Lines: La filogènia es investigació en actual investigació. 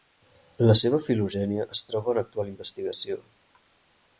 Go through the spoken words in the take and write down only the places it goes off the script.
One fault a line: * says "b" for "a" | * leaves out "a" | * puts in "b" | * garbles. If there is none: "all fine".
* puts in "seva"
* says "troba" for "investigació"